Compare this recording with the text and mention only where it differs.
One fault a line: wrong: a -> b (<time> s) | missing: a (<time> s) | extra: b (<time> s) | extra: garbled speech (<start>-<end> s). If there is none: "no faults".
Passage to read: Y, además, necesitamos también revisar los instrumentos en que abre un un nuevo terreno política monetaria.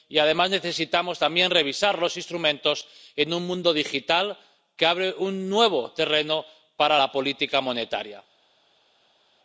extra: un mundo digital (3.3 s)
missing: un (5.5 s)
extra: para la (6.8 s)